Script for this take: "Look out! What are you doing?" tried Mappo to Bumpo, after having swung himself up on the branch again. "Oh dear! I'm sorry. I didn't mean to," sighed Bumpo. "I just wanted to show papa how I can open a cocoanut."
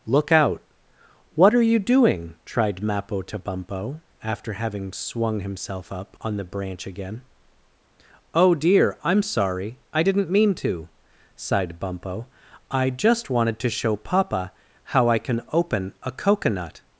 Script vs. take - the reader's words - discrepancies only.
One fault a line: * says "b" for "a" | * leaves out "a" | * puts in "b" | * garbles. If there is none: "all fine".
all fine